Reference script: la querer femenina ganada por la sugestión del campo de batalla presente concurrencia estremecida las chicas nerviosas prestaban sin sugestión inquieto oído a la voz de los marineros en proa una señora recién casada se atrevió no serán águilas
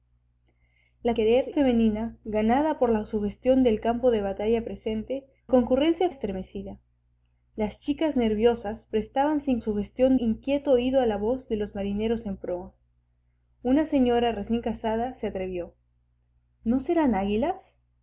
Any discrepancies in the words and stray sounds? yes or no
no